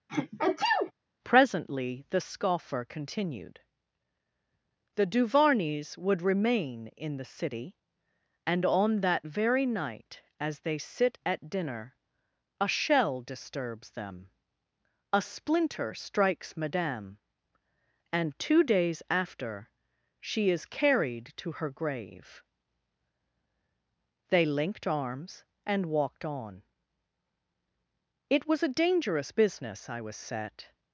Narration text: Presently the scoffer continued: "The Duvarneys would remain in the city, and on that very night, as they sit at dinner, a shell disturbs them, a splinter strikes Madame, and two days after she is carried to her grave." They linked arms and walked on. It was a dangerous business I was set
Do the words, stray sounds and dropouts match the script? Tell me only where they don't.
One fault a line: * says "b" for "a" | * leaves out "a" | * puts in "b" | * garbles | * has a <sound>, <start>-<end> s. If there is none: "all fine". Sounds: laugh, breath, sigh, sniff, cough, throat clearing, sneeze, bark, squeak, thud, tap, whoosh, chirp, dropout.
* has a sneeze, 0.1-0.9 s